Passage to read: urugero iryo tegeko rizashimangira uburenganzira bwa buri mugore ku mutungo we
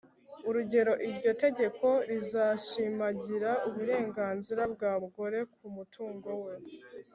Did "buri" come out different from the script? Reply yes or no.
yes